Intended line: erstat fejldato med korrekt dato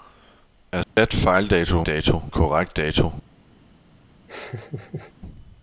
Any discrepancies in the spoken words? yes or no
yes